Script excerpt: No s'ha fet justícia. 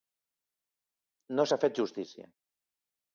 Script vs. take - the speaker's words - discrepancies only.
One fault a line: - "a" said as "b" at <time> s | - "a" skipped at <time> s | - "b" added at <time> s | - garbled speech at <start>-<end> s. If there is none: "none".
none